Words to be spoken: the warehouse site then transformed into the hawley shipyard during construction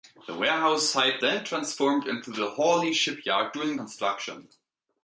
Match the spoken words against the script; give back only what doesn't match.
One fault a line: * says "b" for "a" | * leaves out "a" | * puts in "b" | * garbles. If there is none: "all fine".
all fine